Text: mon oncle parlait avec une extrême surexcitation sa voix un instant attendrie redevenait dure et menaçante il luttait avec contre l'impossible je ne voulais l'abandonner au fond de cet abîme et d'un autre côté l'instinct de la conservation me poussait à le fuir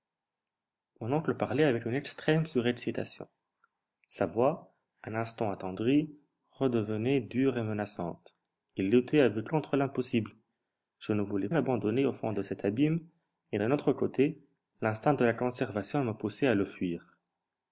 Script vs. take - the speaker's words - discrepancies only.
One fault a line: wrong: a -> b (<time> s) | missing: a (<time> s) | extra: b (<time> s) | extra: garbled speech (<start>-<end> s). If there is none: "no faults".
no faults